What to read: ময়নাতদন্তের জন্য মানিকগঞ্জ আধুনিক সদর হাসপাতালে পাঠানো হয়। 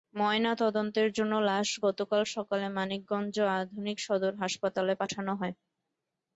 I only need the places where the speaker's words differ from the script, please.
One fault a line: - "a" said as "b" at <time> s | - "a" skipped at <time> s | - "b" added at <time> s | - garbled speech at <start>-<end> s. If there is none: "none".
- "লাশ গতকাল সকালে" added at 1.5 s